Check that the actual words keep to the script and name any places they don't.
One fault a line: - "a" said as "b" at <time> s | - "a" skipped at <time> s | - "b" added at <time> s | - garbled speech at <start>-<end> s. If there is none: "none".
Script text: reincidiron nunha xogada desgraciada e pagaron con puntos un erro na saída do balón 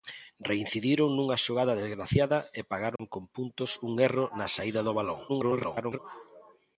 - garbled speech at 5.3-6.0 s